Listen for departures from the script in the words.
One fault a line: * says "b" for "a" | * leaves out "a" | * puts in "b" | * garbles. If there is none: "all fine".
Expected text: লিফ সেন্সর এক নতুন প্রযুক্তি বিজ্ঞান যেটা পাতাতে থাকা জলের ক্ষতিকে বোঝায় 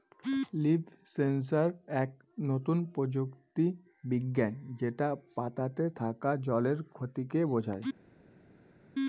all fine